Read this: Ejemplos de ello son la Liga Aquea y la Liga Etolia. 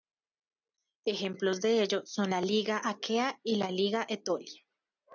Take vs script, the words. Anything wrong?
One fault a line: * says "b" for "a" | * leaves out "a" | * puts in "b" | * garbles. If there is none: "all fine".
all fine